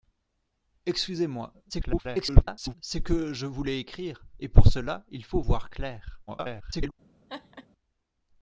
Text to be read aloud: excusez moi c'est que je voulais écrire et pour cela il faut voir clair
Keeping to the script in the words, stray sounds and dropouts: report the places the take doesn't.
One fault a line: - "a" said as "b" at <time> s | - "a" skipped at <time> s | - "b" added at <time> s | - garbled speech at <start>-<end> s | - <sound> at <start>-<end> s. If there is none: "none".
- garbled speech at 1.7-2.7 s
- garbled speech at 6.3-6.9 s
- laugh at 7.3-7.7 s